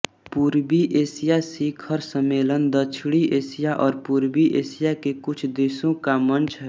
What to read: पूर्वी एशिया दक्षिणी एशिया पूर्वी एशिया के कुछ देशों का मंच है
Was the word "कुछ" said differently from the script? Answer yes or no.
no